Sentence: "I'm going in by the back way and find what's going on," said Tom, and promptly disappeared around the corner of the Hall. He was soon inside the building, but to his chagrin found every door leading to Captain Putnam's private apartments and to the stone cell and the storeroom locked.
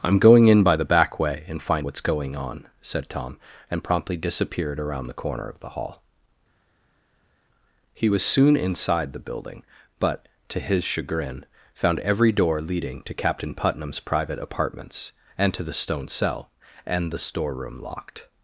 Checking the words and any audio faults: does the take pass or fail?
pass